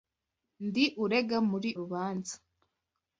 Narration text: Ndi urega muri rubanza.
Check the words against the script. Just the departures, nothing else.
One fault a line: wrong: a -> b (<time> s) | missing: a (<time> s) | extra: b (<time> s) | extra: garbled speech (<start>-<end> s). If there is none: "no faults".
no faults